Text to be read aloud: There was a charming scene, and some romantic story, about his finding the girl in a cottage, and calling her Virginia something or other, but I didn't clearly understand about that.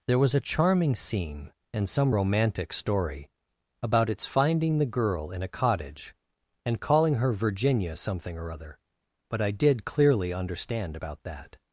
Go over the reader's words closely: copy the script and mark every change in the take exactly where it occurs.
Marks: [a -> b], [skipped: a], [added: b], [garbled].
There was a charming scene, and some romantic story, about [his -> its] finding the girl in a cottage, and calling her Virginia something or other, but I [didn't -> did] clearly understand about that.